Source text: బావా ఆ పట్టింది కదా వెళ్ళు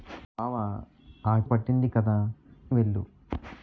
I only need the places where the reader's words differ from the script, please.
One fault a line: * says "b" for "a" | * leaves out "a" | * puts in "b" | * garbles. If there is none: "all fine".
all fine